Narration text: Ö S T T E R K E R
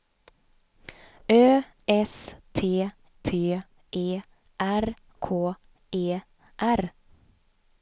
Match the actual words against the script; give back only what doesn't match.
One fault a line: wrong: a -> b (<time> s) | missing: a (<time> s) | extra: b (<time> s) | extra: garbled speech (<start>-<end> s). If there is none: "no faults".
no faults